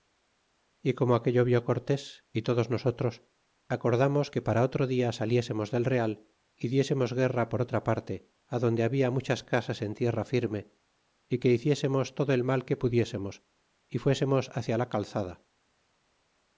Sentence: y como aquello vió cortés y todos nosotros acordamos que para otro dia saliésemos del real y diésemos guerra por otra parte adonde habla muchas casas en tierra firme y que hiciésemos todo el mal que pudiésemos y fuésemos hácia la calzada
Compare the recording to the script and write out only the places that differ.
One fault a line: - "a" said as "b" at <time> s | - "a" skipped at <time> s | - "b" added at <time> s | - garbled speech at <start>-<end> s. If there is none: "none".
none